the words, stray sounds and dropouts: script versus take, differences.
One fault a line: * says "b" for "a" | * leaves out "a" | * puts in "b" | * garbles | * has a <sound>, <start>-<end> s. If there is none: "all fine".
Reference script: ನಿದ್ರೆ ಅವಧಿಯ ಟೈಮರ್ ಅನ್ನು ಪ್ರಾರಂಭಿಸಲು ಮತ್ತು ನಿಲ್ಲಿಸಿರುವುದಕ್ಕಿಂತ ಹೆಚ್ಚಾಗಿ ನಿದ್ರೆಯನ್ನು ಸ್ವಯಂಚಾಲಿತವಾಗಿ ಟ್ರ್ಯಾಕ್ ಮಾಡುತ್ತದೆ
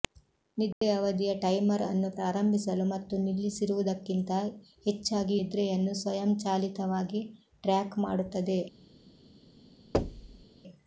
* has a dropout, 0.7-0.8 s
* has a thud, 9.9-10.4 s